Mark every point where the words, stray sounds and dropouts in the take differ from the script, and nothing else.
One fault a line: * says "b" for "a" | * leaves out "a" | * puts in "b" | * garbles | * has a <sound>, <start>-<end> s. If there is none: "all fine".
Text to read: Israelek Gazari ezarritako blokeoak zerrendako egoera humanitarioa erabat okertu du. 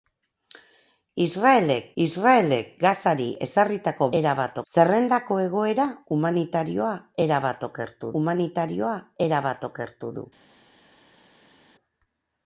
* puts in "israelek"
* says "erabat" for "blokeoak"
* puts in "humanitarioa erabat okertu"